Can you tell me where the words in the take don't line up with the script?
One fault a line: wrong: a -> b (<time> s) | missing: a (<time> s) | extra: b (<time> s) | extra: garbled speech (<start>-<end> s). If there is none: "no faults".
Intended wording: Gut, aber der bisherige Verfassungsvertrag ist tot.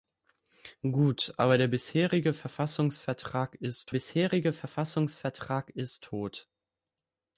extra: bisherige Verfassungsvertrag ist (3.9 s)